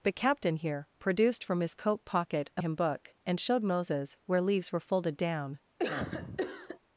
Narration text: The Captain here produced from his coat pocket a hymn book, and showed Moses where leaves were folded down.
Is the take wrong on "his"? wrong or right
right